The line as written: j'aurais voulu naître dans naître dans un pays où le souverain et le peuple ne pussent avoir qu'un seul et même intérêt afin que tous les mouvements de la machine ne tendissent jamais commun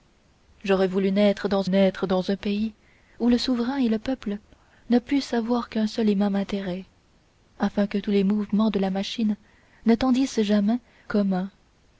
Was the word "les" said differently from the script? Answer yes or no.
no